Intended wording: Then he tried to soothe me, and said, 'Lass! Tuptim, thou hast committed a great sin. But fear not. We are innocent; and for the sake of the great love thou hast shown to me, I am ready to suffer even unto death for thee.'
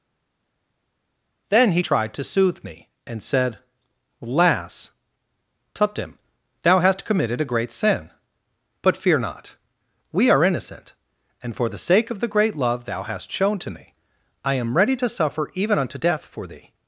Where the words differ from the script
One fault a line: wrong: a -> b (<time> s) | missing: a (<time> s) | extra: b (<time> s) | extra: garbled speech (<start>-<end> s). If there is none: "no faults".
no faults